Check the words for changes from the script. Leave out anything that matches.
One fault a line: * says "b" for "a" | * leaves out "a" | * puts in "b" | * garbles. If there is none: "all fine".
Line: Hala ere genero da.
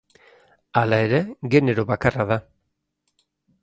* puts in "bakarra"